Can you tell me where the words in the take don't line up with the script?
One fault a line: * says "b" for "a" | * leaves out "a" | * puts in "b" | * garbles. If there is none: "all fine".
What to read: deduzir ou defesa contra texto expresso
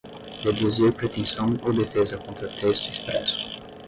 * puts in "pretensão"